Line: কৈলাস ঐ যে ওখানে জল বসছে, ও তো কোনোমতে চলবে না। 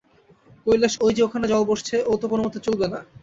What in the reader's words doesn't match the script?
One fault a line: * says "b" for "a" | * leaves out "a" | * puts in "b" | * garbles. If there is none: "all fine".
all fine